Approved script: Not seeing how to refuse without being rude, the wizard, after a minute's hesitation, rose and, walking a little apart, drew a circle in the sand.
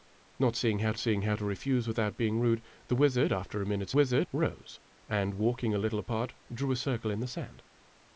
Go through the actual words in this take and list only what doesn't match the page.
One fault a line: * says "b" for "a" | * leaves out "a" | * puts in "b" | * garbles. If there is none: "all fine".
* puts in "seeing how"
* says "wizard" for "hesitation"